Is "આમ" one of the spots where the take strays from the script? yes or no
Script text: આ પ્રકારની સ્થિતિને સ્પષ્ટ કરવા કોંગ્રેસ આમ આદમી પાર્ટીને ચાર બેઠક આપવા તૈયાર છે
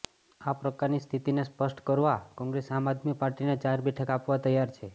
no